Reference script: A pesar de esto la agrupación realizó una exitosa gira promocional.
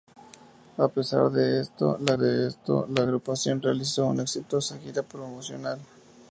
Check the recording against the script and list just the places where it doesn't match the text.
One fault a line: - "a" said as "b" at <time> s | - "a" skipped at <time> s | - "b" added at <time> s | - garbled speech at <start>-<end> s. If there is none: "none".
- "de esto la" added at 2.1 s